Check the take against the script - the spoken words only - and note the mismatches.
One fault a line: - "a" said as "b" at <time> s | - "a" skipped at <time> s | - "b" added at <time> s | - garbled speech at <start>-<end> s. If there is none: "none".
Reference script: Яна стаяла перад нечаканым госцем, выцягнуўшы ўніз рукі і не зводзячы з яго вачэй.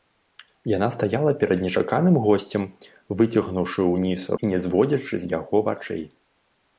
- "рукі" skipped at 4.2 s